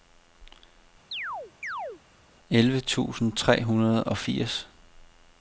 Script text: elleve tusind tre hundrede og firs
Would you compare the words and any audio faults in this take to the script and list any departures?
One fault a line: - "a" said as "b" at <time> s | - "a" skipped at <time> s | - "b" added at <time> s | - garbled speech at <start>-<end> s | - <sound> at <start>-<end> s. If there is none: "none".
- chirp at 1.1-2.0 s